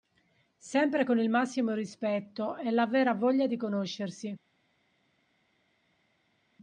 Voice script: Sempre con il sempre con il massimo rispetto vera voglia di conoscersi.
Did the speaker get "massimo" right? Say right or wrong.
wrong